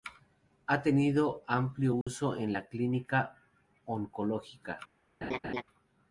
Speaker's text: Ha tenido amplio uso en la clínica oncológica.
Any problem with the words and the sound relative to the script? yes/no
yes